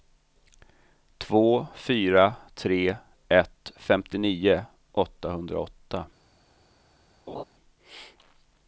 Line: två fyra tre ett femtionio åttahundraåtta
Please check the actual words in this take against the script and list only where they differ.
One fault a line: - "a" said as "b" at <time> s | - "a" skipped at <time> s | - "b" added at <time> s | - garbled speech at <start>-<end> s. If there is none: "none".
none